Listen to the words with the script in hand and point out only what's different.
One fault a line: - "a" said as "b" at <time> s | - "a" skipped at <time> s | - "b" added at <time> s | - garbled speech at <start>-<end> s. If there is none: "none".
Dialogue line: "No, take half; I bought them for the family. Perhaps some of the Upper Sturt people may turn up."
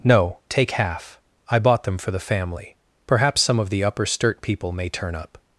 none